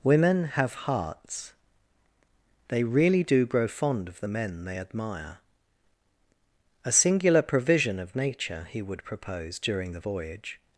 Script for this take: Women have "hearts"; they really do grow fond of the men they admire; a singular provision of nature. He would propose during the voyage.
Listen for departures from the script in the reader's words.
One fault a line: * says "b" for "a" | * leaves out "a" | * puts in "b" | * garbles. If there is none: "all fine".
all fine